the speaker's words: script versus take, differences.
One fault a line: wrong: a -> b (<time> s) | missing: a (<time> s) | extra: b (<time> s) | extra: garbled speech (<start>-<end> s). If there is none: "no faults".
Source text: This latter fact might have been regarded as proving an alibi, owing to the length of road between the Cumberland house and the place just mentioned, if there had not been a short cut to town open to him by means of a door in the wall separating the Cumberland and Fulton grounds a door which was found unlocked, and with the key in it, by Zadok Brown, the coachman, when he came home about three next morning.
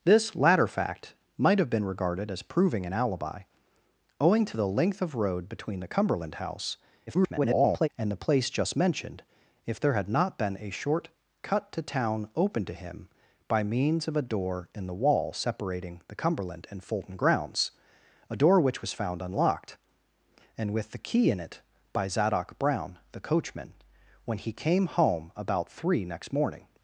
extra: garbled speech (7.1-7.9 s)